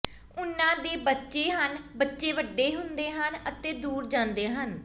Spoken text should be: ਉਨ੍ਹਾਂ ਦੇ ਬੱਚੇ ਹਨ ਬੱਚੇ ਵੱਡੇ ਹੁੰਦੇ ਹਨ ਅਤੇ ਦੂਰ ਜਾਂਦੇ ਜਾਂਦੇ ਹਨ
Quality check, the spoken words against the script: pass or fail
fail